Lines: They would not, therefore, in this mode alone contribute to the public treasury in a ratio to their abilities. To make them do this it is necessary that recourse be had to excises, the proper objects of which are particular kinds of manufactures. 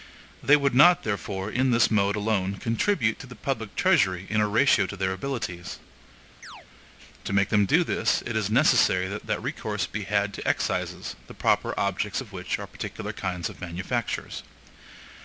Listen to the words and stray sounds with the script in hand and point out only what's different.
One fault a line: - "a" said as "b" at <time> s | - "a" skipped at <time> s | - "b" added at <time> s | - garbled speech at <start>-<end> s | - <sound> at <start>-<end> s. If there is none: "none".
- chirp at 6.4-6.7 s